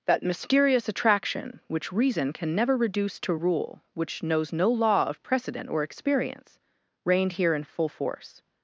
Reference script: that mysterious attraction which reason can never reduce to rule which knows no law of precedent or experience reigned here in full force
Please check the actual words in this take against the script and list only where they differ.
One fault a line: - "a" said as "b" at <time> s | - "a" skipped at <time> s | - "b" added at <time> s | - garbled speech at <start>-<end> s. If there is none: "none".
none